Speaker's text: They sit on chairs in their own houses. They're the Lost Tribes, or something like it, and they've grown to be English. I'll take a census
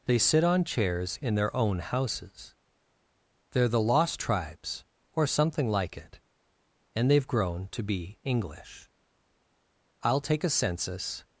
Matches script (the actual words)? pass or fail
pass